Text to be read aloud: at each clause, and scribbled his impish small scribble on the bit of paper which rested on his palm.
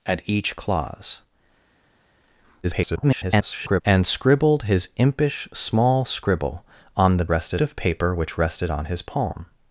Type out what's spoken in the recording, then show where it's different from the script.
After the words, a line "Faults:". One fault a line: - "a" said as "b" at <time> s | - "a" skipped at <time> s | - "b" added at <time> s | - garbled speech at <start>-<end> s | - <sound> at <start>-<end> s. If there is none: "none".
at each clause, [garbled] and scribbled his impish small scribble on the rested of paper which rested on his palm.
Faults:
- garbled speech at 2.6-3.8 s
- "bit" said as "rested" at 7.3 s